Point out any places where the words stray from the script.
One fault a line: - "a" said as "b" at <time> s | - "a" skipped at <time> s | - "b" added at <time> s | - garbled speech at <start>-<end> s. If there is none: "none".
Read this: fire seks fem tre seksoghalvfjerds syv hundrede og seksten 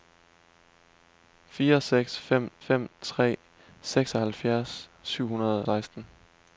- "fem" added at 2.6 s
- "og" skipped at 5.7 s